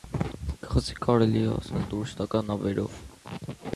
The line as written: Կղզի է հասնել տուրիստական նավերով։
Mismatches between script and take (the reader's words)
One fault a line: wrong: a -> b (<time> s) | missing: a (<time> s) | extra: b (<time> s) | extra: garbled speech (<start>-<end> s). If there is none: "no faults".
extra: կարելի (1.1 s)